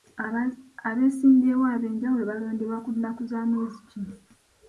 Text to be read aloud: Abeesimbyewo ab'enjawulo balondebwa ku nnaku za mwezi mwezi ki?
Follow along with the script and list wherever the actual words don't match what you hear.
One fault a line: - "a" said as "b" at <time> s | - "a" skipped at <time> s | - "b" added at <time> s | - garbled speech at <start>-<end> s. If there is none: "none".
- "mwezi" skipped at 3.8 s